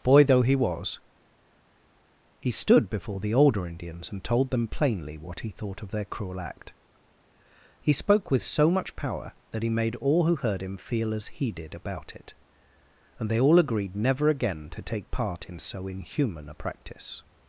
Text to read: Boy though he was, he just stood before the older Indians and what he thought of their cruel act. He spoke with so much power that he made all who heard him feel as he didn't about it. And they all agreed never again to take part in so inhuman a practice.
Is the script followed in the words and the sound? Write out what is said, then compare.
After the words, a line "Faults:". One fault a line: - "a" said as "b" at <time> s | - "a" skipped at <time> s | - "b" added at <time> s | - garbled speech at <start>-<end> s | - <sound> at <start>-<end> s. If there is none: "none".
Boy though he was, he stood before the older Indians and told them plainly what he thought of their cruel act. He spoke with so much power that he made all who heard him feel as he did about it. And they all agreed never again to take part in so inhuman a practice.
Faults:
- "just" skipped at 2.5 s
- "told them plainly" added at 4.2 s
- "didn't" said as "did" at 11.5 s